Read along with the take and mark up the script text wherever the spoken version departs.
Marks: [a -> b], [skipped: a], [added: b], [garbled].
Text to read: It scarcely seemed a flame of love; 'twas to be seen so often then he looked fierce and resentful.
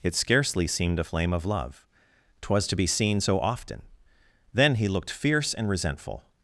It scarcely seemed a flame of love; 'twas to be seen so often then he looked fierce and resentful.